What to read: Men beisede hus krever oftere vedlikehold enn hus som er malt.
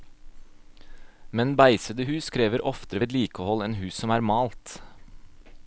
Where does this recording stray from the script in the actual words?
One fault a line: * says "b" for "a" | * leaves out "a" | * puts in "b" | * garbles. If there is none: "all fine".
all fine